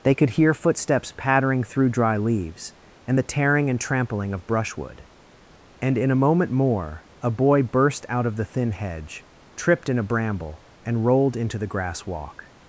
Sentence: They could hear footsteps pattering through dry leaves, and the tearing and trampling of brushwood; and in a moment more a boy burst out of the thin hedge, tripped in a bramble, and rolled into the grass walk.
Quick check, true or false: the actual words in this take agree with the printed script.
true